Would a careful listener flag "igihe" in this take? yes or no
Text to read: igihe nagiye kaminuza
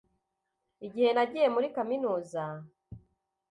no